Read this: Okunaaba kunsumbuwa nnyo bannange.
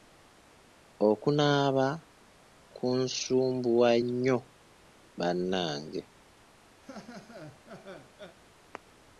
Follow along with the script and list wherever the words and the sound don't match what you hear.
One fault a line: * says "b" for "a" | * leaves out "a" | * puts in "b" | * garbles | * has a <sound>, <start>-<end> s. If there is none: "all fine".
* has a laugh, 6.8-8.4 s